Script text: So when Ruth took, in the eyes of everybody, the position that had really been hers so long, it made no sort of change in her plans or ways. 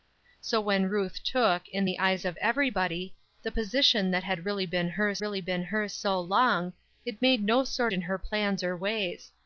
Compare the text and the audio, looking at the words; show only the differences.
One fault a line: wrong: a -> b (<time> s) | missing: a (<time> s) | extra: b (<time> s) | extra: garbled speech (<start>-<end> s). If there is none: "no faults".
extra: really been hers (5.2 s)
missing: of change (7.9 s)